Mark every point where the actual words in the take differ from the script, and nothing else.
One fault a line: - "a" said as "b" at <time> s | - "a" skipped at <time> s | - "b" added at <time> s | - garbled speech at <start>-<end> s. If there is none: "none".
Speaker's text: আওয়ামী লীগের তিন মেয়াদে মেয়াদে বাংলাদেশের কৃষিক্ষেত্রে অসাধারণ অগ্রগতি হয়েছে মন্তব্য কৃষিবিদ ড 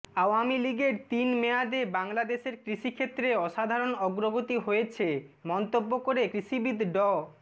- "মেয়াদে" skipped at 1.8 s
- "করে" added at 6.0 s